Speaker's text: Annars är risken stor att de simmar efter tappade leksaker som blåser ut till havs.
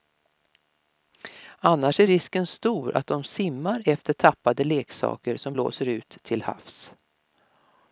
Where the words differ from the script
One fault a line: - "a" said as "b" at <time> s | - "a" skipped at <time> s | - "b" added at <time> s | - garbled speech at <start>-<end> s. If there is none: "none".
none